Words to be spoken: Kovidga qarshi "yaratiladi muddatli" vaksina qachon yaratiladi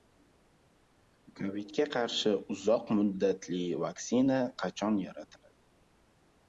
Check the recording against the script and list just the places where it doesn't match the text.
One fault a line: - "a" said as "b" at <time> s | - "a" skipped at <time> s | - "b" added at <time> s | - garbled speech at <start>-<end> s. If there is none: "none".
- "yaratiladi" said as "uzoq" at 2.6 s